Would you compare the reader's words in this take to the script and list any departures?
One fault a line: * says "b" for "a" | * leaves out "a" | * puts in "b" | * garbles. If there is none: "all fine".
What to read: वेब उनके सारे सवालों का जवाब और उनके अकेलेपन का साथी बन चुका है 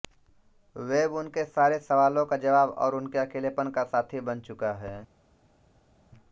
all fine